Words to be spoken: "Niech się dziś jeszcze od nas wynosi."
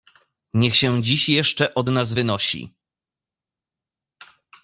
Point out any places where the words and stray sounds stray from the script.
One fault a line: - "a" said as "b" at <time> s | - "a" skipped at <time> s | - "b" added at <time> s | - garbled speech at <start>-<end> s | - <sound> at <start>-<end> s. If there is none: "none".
none